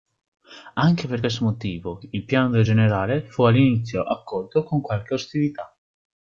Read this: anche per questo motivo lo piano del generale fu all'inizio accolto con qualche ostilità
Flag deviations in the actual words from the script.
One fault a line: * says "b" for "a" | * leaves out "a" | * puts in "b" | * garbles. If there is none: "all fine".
* says "il" for "lo"